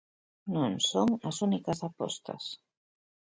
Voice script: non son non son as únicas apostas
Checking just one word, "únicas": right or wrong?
right